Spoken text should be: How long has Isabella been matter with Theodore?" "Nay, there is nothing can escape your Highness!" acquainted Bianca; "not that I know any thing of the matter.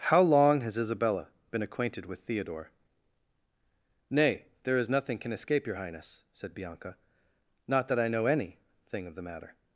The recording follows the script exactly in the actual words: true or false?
false